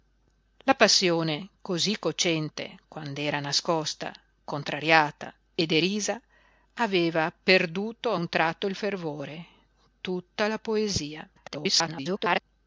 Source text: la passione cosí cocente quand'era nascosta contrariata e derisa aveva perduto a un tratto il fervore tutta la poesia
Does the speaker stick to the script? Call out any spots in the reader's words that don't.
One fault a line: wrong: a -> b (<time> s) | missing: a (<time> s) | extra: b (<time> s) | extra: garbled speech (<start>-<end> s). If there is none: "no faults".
extra: garbled speech (11.4-12.4 s)